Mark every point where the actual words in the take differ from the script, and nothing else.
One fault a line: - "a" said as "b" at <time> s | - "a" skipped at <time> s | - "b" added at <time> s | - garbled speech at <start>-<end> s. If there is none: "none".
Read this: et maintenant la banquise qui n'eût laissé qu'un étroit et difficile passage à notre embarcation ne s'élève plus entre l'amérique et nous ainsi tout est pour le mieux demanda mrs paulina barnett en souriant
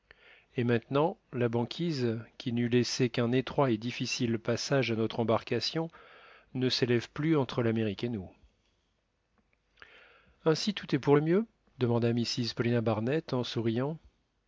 none